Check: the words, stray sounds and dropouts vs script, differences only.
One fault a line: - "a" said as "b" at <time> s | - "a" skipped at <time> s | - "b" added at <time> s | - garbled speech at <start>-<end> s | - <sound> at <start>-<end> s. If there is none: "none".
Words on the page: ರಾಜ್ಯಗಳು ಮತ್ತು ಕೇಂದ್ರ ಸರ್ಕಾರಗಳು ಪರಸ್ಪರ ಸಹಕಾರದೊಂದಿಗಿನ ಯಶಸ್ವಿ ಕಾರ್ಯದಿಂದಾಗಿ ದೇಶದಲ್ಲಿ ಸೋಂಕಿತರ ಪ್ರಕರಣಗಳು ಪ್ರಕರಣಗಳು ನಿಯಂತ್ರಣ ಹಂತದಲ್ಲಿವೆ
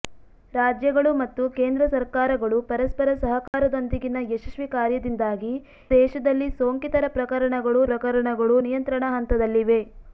- dropout at 3.5-3.5 s